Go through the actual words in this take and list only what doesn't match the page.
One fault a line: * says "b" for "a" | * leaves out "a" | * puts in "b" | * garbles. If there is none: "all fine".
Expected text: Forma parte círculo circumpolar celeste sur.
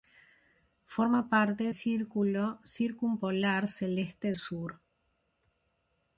all fine